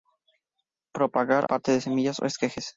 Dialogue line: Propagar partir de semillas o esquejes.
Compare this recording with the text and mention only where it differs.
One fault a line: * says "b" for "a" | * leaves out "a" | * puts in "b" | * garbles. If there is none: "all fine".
all fine